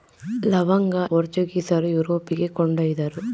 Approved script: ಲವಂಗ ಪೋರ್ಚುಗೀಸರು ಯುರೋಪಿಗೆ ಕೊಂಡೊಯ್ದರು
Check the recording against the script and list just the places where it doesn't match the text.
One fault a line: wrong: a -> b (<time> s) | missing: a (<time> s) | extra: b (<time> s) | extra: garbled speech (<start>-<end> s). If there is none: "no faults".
no faults